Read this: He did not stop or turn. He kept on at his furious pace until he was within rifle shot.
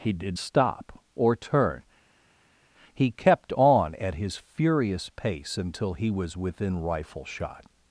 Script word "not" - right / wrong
wrong